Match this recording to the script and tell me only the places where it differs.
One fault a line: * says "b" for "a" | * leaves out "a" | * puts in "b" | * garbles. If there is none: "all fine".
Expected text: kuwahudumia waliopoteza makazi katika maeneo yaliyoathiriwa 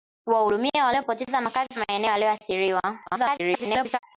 * leaves out "katika"
* garbles